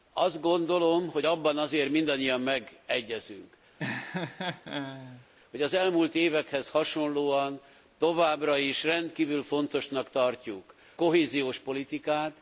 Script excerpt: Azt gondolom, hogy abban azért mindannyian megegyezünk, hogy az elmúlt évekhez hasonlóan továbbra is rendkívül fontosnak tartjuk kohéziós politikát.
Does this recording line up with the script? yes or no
yes